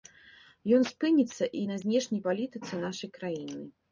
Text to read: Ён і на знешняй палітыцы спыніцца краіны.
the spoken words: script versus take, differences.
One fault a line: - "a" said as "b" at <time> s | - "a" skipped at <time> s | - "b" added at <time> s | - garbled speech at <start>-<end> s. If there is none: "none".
- "спыніцца" added at 0.9 s
- "спыніцца" said as "нашай" at 2.9 s